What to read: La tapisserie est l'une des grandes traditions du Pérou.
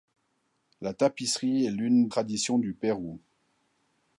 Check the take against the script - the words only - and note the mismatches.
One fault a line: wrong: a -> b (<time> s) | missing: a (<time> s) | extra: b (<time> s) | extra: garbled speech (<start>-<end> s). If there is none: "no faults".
missing: des grandes (2.1 s)